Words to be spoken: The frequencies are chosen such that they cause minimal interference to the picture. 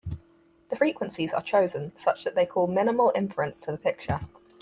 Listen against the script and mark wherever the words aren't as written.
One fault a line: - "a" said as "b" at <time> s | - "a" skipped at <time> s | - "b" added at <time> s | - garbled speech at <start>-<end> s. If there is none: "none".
none